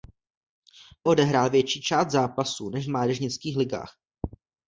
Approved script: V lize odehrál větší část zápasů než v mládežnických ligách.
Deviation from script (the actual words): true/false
true